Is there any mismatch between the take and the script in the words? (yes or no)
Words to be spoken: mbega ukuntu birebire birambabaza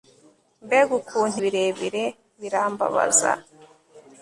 no